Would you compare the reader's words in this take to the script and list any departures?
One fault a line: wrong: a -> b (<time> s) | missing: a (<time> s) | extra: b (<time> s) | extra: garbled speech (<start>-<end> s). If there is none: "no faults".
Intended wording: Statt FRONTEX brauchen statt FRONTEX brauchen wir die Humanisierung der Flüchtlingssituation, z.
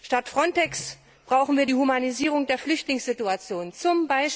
missing: statt FRONTEX brauchen (1.6 s)